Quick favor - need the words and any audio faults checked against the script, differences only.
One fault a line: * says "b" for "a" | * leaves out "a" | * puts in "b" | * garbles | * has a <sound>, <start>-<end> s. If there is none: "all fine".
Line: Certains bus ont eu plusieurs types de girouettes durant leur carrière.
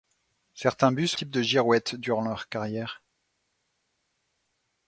* leaves out "ont eu plusieurs"